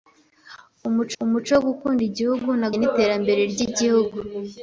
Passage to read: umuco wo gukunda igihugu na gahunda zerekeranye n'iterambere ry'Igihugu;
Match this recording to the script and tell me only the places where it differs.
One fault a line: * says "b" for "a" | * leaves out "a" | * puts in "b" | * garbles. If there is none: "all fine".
* puts in "umuco"
* leaves out "gahunda zerekeranye"